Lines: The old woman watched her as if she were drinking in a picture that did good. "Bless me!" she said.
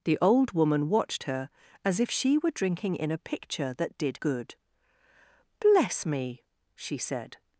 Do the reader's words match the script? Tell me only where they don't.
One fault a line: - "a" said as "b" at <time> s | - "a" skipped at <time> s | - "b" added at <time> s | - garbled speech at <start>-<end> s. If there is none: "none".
none